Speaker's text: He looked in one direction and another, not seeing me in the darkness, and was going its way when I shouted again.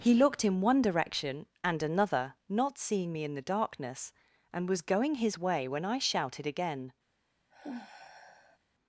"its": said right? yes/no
no